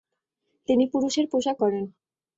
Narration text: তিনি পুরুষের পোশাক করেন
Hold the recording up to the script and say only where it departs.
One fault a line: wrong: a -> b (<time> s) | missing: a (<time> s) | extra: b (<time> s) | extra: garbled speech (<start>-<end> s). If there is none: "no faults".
no faults